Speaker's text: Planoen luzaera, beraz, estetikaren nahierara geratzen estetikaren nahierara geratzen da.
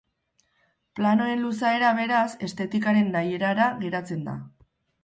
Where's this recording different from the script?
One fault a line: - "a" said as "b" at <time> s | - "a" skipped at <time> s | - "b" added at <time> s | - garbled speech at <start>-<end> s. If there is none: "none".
- "estetikaren nahierara geratzen" skipped at 4.3 s